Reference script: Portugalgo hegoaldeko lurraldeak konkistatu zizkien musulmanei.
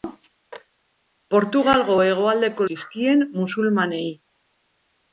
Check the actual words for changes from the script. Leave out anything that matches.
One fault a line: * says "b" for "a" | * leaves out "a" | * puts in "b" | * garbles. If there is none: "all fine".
* leaves out "lurraldeak konkistatu"